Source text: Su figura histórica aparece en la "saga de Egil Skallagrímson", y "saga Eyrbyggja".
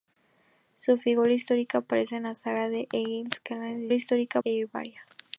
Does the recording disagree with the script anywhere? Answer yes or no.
yes